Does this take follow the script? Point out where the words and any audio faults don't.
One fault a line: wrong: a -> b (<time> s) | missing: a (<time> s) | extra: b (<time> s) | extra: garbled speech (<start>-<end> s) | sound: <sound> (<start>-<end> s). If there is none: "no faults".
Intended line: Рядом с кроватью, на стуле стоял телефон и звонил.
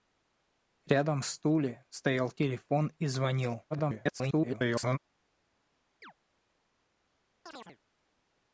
missing: с кроватью на (1.2 s)
extra: garbled speech (3.7-5.0 s)
sound: chirp (6.0-6.1 s)
sound: chirp (7.5-7.8 s)